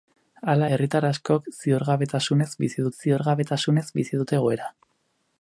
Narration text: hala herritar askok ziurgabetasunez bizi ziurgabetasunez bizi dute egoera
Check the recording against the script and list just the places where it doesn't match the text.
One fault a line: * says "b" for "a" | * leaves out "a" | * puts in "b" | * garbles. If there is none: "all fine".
all fine